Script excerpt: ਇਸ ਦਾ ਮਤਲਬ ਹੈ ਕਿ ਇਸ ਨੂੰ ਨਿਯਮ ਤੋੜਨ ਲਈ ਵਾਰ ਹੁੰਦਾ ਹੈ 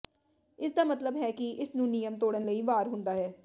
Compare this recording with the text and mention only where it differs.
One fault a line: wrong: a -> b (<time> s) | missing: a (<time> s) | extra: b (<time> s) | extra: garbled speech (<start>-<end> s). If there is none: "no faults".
no faults